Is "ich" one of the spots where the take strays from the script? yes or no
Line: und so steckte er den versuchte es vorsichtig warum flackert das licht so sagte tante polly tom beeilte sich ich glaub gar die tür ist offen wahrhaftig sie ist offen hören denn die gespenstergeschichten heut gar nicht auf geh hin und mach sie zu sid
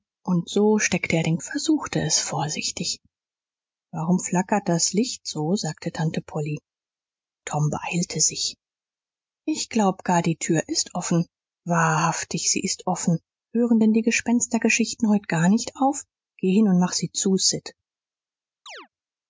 no